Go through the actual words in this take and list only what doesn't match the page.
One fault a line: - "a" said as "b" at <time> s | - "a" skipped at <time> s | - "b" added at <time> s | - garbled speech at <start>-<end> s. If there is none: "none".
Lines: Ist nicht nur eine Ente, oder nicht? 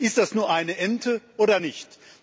- "nicht" said as "das" at 0.2 s